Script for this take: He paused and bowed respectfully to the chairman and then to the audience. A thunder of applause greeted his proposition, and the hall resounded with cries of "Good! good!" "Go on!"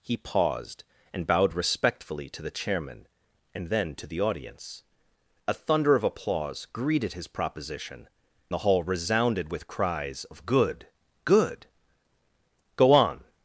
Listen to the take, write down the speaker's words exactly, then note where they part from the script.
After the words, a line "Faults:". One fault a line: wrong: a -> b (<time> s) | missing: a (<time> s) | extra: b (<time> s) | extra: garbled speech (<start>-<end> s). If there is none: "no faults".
He paused and bowed respectfully to the chairman and then to the audience. A thunder of applause greeted his proposition, the hall resounded with cries of "Good! good!" "Go on!"
Faults:
missing: and (8.1 s)